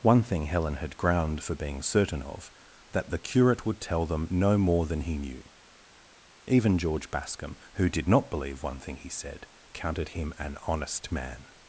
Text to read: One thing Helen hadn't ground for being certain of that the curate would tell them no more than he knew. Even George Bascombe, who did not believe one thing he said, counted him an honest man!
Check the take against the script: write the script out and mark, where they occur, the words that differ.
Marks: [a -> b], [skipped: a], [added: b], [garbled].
One thing Helen [hadn't -> had] ground for being certain of that the curate would tell them no more than he knew. Even George Bascombe, who did not believe one thing he said, counted him an honest man!